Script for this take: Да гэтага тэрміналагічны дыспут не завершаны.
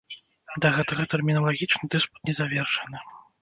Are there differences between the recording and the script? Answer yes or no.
no